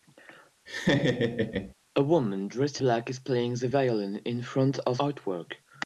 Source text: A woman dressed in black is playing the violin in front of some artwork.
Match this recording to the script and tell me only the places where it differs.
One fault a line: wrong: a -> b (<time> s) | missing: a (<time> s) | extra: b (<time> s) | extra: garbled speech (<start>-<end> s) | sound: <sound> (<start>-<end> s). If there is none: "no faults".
sound: laugh (0.7-1.7 s)
missing: in (2.8 s)
missing: some (5.0 s)